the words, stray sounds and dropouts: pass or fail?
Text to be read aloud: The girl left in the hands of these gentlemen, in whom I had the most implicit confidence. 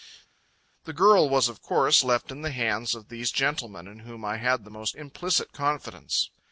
fail